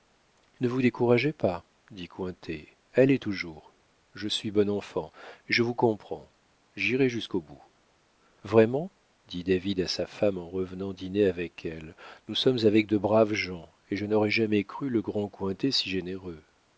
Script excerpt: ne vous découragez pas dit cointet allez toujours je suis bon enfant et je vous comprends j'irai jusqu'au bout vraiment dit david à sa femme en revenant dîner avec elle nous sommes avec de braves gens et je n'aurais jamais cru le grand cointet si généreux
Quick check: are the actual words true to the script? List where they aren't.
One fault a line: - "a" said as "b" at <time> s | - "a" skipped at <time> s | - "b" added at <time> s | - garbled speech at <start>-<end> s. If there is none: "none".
none